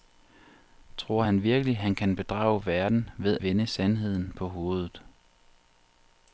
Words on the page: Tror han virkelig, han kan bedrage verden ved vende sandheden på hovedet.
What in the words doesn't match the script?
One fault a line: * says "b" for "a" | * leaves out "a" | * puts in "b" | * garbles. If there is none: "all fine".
all fine